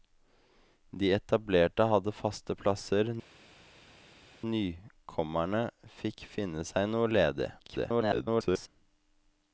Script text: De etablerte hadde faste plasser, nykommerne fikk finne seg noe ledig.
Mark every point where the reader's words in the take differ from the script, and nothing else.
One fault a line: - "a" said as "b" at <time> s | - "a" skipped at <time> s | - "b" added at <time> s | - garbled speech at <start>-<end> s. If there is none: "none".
- garbled speech at 7.6-8.7 s